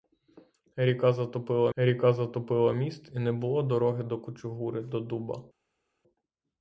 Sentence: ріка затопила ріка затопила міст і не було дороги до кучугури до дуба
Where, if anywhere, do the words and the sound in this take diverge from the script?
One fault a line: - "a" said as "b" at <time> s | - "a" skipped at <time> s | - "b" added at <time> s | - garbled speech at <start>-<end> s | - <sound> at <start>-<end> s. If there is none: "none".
none